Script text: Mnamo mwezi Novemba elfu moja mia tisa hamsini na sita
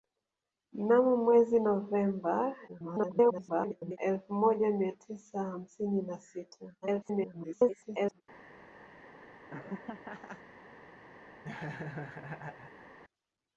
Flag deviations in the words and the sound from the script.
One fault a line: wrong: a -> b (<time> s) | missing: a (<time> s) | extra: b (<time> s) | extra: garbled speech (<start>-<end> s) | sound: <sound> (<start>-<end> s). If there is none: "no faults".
extra: garbled speech (2.7-4.0 s)
extra: garbled speech (6.8-8.2 s)
sound: laugh (9.5-10.4 s)
sound: laugh (11.4-13.0 s)